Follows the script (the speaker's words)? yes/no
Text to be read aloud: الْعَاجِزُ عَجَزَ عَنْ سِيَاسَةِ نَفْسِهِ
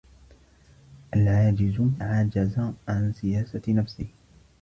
yes